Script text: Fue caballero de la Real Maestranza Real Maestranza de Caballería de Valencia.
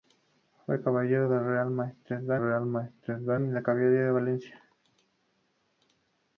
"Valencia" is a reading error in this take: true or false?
false